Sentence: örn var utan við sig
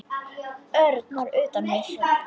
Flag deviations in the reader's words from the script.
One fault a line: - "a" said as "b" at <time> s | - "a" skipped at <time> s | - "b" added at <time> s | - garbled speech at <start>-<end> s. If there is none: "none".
none